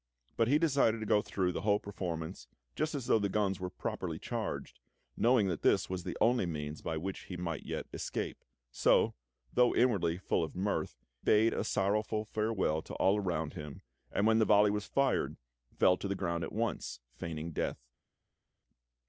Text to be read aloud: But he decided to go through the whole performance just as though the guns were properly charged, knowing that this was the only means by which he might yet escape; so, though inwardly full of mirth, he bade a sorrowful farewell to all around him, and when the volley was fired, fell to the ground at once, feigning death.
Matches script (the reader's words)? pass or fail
fail